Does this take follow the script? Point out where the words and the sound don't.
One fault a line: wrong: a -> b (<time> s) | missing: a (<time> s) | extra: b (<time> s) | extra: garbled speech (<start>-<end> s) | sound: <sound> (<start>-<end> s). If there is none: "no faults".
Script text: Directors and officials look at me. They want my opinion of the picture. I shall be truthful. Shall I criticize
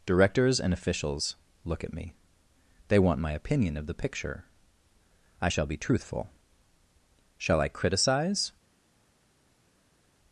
no faults